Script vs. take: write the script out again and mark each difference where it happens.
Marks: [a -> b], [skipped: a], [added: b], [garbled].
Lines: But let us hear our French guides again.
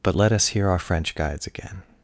But let us hear our French guides again.